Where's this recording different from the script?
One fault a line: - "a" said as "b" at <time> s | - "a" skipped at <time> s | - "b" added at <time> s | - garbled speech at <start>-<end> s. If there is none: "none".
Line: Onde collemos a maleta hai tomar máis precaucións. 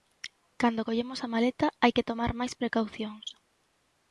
- "Onde" said as "Cando" at 0.6 s
- "que" added at 1.9 s